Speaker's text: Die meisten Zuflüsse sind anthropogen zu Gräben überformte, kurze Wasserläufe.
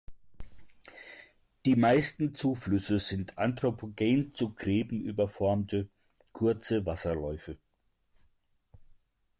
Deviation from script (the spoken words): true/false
false